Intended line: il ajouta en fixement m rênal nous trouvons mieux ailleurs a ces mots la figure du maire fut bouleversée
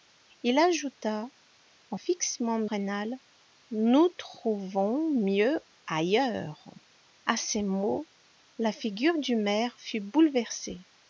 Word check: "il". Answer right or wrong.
right